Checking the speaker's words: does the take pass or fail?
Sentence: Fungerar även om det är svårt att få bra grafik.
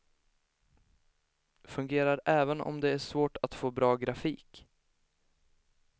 pass